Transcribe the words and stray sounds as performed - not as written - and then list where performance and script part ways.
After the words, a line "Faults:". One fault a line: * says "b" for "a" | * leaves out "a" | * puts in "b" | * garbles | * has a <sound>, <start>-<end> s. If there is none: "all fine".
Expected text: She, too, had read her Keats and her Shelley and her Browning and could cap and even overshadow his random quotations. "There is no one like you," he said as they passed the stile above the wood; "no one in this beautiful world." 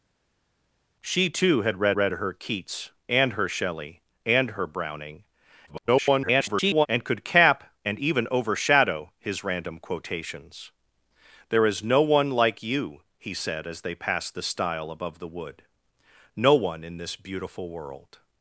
She, too, had read read her Keats and her Shelley and her Browning [garbled] and could cap and even overshadow his random quotations. "There is no one like you," he said as they passed the stile above the wood; "no one in this beautiful world."
Faults:
* puts in "read"
* garbles